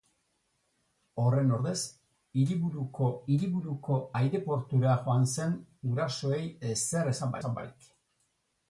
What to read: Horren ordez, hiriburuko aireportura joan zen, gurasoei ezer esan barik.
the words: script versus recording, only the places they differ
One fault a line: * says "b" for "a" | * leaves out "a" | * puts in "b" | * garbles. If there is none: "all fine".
* puts in "hiriburuko"
* puts in "esan"